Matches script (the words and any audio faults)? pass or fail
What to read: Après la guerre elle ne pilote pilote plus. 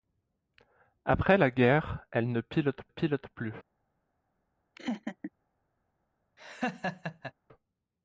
fail